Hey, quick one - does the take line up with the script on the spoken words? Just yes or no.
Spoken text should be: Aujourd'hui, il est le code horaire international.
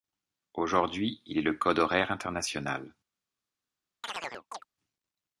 yes